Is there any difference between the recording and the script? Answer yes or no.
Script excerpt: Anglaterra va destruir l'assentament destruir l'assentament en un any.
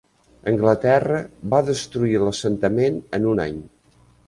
yes